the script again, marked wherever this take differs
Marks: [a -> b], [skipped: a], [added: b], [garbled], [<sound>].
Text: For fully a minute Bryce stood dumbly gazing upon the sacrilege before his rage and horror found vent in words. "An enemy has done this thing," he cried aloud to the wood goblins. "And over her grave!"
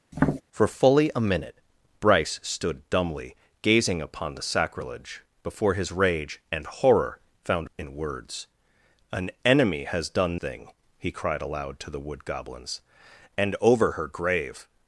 [tap] For fully a minute Bryce stood dumbly gazing upon the sacrilege before his rage and horror found [skipped: vent] in words. "An enemy has done [skipped: this] thing," he cried aloud to the wood goblins. "And over her grave!"